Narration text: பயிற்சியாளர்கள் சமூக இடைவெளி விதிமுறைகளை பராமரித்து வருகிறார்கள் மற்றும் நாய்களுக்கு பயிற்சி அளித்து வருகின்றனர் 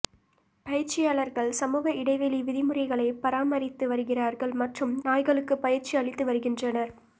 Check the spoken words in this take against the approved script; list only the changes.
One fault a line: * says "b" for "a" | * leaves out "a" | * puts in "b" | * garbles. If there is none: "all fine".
all fine